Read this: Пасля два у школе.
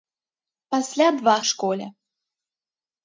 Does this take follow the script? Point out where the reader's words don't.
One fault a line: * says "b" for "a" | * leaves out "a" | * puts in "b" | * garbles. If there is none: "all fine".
all fine